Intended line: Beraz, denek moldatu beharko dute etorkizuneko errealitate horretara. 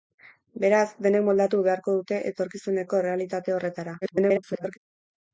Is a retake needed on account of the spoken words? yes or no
yes